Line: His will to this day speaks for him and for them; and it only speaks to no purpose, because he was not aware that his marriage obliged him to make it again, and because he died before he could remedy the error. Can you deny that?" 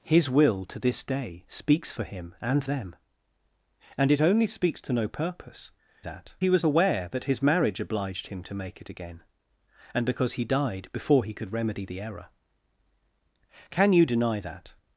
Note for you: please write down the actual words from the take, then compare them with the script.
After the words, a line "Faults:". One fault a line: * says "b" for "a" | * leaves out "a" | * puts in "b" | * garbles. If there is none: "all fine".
His will to this day speaks for him and them; and it only speaks to no purpose, that he was aware that his marriage obliged him to make it again, and because he died before he could remedy the error. Can you deny that?"
Faults:
* leaves out "for"
* says "that" for "because"
* leaves out "not"